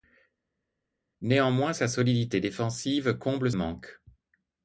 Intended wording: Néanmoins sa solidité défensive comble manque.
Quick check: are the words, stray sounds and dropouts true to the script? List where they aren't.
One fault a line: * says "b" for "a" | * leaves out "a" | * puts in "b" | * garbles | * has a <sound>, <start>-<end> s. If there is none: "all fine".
all fine